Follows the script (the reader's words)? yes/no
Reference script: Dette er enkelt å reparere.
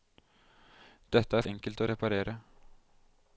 yes